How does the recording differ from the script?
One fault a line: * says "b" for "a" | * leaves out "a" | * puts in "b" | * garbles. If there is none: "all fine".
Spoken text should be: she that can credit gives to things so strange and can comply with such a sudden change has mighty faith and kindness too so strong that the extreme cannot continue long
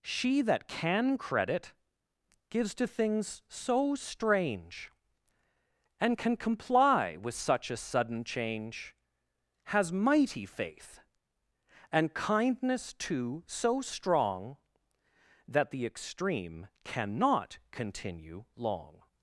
all fine